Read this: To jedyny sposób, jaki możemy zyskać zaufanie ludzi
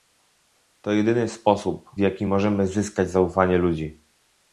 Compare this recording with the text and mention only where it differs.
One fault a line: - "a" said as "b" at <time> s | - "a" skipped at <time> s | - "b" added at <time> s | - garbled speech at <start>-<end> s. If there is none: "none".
none